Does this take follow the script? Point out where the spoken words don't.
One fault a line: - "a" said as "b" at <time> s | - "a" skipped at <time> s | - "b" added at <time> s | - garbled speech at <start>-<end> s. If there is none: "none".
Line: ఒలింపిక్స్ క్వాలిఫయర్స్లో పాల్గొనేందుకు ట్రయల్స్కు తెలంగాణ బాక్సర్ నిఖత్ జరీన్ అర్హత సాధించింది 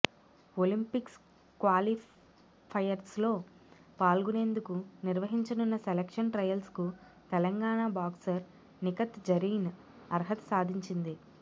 - "నిర్వహించనున్న సెలక్షన్" added at 5.0 s